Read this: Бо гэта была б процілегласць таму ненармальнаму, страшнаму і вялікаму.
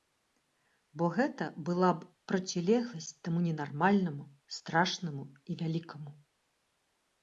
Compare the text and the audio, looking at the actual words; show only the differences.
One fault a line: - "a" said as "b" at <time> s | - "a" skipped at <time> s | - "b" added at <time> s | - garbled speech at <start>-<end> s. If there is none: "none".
none